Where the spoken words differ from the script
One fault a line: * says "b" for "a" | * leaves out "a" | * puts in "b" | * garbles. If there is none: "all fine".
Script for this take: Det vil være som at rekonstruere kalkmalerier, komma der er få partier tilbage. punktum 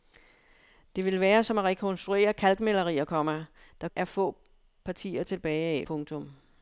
all fine